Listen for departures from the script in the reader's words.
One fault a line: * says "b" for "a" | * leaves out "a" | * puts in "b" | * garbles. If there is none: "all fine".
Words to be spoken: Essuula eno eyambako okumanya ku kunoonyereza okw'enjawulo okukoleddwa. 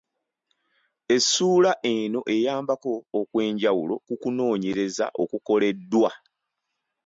* says "okw'enjawulo" for "okumanya"
* leaves out "okw'enjawulo"